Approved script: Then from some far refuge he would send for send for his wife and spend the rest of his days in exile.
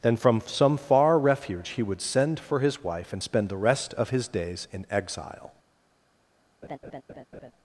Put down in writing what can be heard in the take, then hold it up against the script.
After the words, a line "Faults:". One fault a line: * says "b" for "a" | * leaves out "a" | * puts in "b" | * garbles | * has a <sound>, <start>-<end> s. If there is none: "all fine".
Then from some far refuge he would send for his wife and spend the rest of his days in exile.
Faults:
* leaves out "send for"
* has a laugh, 6.6-7.5 s